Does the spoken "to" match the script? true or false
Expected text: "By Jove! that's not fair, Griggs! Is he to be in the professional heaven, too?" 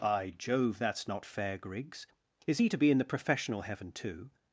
true